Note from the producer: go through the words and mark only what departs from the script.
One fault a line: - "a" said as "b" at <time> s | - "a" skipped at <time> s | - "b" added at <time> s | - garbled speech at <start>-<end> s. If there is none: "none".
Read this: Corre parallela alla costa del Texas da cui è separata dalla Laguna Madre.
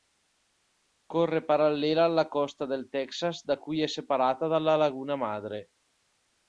none